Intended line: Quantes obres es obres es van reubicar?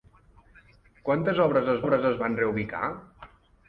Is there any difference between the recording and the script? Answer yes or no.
no